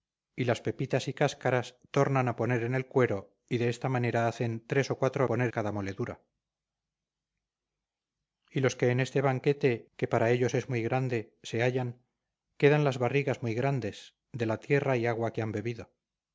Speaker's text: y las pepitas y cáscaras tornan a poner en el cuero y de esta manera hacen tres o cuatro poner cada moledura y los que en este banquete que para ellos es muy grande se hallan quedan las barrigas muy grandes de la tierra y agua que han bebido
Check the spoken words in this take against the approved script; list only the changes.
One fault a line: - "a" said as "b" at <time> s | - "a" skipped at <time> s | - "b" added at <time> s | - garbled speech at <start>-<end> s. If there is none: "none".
none